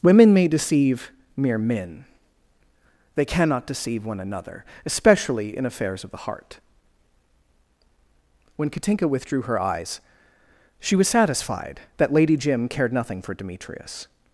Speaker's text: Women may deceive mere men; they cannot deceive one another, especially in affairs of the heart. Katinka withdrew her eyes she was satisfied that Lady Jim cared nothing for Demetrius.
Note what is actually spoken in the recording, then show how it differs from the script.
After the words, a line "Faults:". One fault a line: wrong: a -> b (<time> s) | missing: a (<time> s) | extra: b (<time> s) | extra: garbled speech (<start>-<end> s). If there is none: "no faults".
Women may deceive mere men; they cannot deceive one another, especially in affairs of the heart. When Katinka withdrew her eyes she was satisfied that Lady Jim cared nothing for Demetrius.
Faults:
extra: When (8.6 s)